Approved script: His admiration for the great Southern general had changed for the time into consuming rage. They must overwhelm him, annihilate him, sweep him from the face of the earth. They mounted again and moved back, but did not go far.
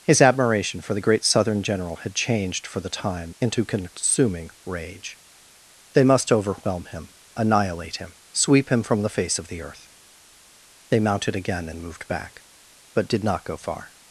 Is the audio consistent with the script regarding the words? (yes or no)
yes